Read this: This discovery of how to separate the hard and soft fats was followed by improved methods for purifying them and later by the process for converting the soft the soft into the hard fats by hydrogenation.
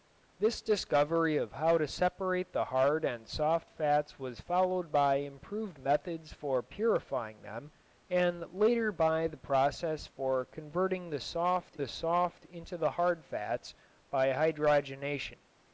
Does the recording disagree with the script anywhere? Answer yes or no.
no